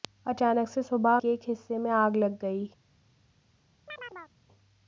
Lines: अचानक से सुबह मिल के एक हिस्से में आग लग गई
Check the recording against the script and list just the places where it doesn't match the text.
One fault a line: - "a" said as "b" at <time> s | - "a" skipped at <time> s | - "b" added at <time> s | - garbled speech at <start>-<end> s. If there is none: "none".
- "मिल" skipped at 1.2 s